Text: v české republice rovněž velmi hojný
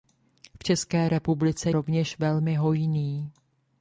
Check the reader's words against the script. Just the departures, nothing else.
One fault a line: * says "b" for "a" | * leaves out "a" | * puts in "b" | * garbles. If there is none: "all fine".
all fine